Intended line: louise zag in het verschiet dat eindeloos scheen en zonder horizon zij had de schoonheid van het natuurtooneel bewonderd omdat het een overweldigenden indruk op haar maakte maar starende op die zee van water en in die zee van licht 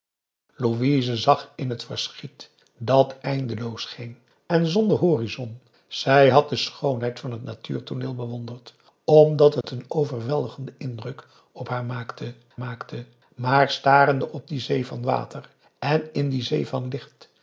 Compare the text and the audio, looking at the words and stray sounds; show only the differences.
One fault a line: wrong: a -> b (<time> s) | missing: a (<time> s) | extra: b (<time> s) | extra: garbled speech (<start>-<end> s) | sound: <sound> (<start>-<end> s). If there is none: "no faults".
sound: dropout (9.6-9.6 s)
extra: maakte (12.6 s)